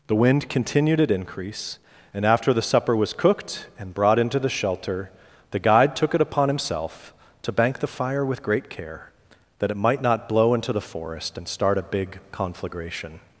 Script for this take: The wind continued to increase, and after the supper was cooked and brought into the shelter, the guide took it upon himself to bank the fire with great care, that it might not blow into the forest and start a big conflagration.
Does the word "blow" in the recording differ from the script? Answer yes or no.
no